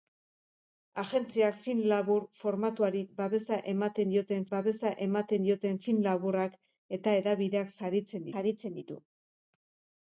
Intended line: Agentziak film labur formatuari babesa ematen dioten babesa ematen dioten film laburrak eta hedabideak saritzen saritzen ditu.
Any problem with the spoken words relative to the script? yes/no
no